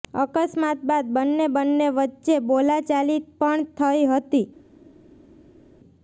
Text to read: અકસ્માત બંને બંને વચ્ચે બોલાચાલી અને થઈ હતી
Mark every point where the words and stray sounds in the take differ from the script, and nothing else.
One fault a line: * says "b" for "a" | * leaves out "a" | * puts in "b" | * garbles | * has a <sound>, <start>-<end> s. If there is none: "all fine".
* puts in "બાદ"
* says "પણ" for "અને"